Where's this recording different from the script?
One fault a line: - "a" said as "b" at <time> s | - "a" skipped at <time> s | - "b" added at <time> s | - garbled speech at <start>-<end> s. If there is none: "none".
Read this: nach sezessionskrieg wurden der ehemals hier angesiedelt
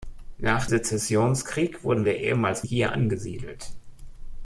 none